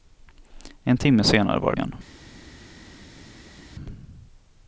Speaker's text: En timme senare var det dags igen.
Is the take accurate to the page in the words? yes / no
no